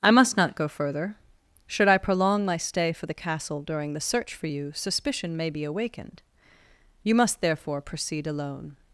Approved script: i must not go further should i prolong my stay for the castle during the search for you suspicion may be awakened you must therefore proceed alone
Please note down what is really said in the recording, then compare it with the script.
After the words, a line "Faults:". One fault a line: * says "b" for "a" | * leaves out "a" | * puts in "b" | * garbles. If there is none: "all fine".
i must not go further should i prolong my stay for the castle during the search for you suspicion may be awakened you must therefore proceed alone
Faults:
all fine